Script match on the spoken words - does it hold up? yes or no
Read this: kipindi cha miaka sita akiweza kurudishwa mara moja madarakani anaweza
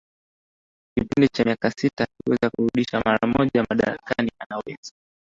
yes